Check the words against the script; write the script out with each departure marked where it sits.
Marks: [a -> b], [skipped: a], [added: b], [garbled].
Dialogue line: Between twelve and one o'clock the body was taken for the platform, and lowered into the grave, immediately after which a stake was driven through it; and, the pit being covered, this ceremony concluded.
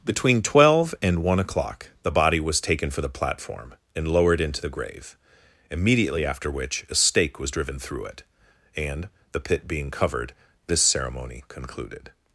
Between twelve and one o'clock the body was taken for the platform, and lowered into the grave, immediately after which a stake was driven through it; and, the pit being covered, this ceremony concluded.